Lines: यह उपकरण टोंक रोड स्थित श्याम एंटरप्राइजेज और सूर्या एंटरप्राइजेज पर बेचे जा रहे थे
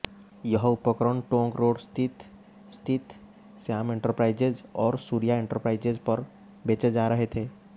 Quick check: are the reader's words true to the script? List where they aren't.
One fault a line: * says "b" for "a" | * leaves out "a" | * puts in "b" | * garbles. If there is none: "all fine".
* puts in "स्थित"